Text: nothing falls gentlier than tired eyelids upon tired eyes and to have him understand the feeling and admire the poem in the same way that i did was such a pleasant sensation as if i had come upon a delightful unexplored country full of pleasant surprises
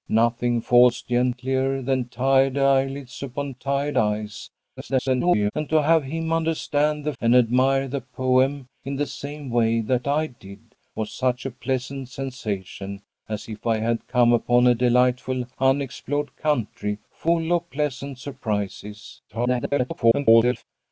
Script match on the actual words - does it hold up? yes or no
no